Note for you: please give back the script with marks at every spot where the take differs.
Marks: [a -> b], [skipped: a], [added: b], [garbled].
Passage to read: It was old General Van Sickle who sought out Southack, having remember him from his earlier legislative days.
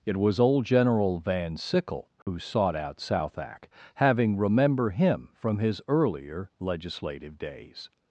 It was old General Van Sickle who sought out Southack, having remember him from his earlier legislative days.